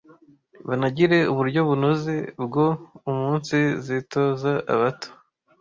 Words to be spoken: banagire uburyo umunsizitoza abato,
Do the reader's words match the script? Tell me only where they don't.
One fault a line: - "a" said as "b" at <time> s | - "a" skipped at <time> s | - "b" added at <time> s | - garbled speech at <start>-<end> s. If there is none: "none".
- "bunoze bwo" added at 1.7 s